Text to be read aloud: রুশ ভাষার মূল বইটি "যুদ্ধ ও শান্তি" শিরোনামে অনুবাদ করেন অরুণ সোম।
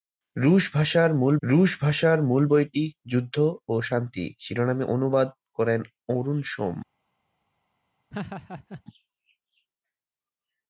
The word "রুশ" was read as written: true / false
true